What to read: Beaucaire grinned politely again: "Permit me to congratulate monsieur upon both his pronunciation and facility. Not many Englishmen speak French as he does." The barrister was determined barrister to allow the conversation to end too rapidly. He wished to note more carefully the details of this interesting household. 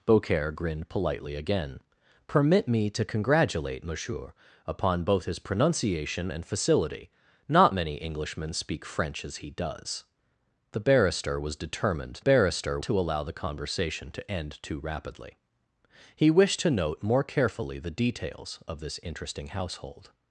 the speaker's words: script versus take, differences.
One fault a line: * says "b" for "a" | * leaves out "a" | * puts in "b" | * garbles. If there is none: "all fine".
all fine